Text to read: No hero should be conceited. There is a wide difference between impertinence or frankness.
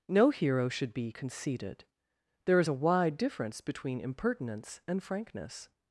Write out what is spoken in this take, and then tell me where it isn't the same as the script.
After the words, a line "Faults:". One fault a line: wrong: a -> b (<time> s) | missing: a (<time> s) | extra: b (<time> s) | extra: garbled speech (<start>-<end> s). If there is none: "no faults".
No hero should be conceited. There is a wide difference between impertinence and frankness.
Faults:
wrong: or -> and (4.9 s)